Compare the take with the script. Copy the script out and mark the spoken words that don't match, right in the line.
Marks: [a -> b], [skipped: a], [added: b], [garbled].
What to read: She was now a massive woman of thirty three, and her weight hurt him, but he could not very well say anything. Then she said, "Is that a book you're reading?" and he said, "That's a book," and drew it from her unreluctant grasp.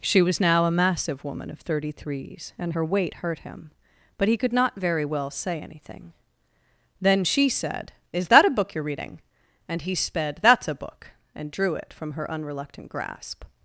She was now a massive woman of thirty [three, -> threes] and her weight hurt him, but he could not very well say anything. Then she said, "Is that a book you're reading?" and he [said, -> sped] "That's a book," and drew it from her unreluctant grasp.